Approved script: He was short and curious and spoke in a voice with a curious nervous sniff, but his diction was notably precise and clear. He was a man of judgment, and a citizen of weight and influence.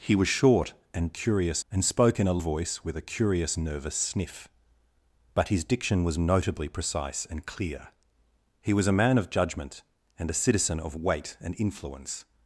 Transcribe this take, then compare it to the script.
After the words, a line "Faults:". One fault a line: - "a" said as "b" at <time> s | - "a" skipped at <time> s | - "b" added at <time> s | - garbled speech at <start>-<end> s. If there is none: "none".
He was short and curious and spoke in a voice with a curious nervous sniff, but his diction was notably precise and clear. He was a man of judgment, and a citizen of weight and influence.
Faults:
none